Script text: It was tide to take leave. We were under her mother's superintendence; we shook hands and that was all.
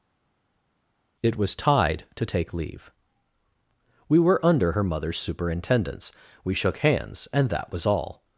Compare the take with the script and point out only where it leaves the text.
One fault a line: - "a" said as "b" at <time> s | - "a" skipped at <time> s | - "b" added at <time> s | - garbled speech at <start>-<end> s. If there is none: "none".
none